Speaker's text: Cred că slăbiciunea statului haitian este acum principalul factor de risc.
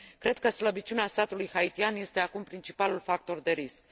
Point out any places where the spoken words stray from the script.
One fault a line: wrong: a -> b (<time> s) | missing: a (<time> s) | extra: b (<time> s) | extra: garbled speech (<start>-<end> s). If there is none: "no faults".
no faults